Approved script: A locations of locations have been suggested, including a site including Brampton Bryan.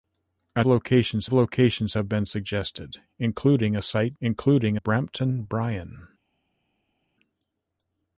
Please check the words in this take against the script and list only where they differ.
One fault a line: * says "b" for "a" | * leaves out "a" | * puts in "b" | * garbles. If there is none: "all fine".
all fine